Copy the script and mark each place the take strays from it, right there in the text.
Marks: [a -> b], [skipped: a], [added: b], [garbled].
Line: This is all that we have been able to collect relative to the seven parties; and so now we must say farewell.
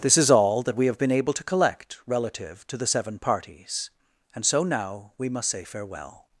This is all that we have been able to collect relative to the seven parties; and so now we must say farewell.